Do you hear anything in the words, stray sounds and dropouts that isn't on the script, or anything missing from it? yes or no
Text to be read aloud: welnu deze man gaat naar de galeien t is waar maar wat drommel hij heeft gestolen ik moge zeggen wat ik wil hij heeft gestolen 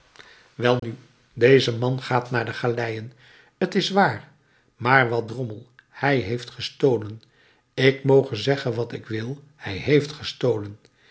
yes